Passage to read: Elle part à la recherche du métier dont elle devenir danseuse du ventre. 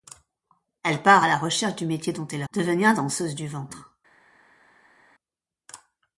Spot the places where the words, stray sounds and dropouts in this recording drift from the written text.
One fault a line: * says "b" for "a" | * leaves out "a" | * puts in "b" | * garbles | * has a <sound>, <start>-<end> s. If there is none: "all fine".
all fine